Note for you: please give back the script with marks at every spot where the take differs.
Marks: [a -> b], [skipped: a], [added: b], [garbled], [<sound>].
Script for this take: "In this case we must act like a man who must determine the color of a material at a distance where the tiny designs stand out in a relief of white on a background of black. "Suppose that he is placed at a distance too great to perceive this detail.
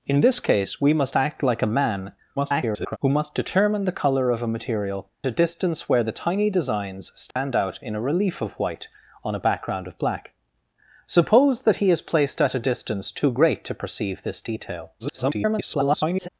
"In this case we must act like a man [garbled] who must determine the color of a material [skipped: at] a distance where the tiny designs stand [dropout] out in a relief of white on a background of black. "Suppose that he is placed at a distance too great to perceive this detail. [garbled]